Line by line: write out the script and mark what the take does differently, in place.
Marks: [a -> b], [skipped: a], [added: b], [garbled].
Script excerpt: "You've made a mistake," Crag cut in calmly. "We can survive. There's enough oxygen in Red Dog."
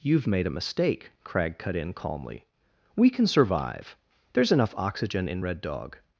"You've made a mistake," Crag cut in calmly. "We can survive. There's enough oxygen in Red Dog."